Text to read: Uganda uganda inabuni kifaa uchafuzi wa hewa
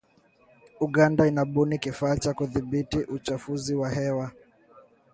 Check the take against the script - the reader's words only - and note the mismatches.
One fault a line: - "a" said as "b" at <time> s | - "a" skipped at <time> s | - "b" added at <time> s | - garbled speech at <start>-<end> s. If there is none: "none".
- "uganda" skipped at 1.3 s
- "cha kudhibiti" added at 2.2 s